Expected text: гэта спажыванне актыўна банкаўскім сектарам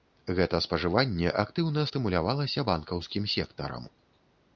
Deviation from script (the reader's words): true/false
true